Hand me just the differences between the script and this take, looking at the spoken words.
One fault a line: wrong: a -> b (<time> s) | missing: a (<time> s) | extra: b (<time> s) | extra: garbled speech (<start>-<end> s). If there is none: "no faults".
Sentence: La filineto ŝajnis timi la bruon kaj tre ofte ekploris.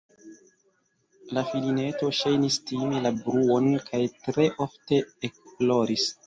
no faults